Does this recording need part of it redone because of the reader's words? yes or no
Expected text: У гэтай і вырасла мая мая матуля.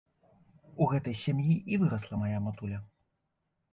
yes